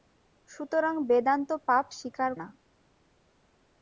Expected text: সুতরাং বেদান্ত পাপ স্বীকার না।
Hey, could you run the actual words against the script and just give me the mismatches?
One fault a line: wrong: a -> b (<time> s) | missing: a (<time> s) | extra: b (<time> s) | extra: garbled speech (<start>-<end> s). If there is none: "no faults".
no faults